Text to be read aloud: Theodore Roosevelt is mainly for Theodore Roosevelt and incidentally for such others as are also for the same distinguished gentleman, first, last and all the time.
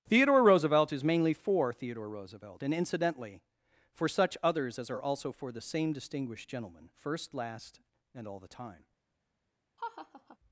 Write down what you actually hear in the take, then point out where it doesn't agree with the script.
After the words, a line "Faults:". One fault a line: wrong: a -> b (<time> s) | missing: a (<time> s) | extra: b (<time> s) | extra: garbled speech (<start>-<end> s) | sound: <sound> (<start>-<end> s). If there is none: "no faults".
Theodore Roosevelt is mainly for Theodore Roosevelt and incidentally for such others as are also for the same distinguished gentleman, first, last and all the time.
Faults:
sound: laugh (9.8-10.4 s)